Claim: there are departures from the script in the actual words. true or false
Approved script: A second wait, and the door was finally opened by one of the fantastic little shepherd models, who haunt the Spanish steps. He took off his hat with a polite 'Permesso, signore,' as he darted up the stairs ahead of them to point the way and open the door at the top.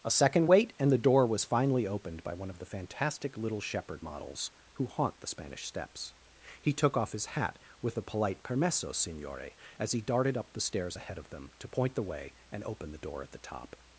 false